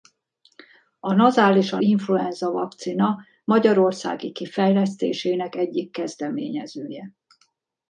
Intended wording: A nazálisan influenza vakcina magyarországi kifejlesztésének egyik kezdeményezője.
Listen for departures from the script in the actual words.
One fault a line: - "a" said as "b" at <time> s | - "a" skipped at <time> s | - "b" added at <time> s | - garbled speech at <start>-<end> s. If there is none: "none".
none